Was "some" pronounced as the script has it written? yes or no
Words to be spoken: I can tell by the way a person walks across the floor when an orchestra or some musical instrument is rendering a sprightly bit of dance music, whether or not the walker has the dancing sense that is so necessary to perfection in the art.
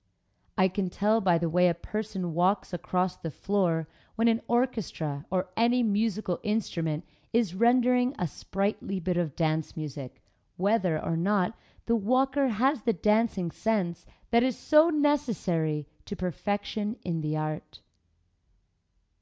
no